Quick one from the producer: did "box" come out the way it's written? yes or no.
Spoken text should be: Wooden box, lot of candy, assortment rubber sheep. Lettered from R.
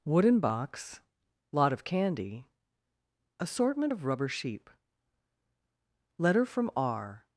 yes